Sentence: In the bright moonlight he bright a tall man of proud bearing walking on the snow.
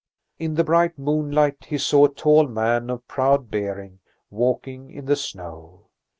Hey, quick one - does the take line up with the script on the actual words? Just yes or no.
no